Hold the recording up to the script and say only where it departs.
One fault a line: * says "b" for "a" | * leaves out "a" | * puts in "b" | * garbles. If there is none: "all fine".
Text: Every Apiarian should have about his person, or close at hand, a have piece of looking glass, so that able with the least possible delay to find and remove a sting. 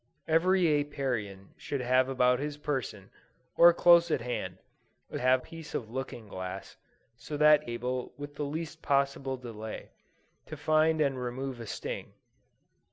all fine